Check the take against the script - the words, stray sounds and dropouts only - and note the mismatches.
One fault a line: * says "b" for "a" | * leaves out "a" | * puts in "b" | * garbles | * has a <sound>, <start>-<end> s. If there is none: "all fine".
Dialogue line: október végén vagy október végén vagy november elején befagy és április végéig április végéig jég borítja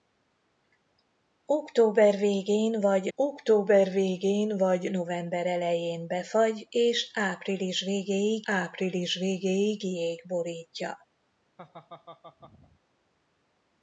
* has a laugh, 11.6-12.8 s